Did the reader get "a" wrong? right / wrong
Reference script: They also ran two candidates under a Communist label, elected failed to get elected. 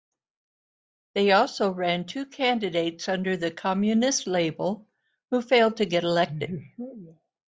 wrong